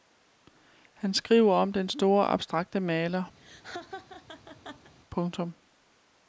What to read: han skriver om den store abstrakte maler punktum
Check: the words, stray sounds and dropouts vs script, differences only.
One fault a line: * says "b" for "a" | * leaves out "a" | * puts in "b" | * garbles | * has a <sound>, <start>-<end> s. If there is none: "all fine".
* has a laugh, 3.4-4.9 s